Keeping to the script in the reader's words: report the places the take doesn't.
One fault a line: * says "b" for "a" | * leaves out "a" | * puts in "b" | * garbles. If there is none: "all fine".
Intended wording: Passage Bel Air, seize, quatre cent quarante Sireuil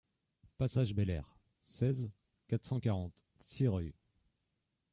all fine